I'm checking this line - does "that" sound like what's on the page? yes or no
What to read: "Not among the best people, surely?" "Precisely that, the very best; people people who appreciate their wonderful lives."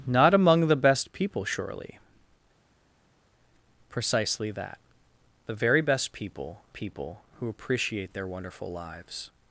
yes